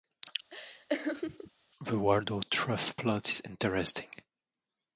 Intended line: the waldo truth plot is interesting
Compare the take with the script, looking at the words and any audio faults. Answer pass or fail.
fail